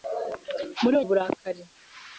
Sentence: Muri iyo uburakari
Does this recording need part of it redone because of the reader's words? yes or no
no